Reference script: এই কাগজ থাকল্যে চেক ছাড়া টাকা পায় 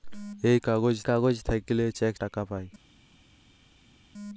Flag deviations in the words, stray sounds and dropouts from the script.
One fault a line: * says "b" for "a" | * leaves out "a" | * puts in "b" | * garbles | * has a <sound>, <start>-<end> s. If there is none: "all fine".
* puts in "কাগজ"
* leaves out "ছাড়া"